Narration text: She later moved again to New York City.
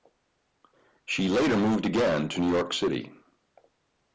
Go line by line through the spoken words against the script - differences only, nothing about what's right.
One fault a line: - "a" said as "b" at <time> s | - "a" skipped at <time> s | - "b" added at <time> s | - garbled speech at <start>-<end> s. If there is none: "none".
none